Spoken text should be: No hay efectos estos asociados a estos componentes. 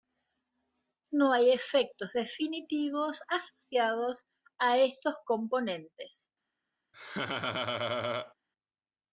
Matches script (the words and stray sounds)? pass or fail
fail